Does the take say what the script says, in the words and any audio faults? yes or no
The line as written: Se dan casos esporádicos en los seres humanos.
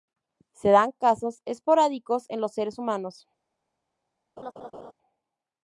no